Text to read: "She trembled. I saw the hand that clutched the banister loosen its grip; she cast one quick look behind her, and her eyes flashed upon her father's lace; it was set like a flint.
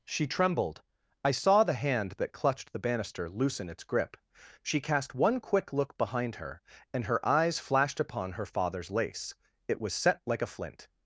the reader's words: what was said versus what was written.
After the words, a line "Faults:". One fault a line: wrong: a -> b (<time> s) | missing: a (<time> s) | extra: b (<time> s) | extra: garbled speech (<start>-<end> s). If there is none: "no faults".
"She trembled. I saw the hand that clutched the banister loosen its grip; she cast one quick look behind her, and her eyes flashed upon her father's lace; it was set like a flint.
Faults:
no faults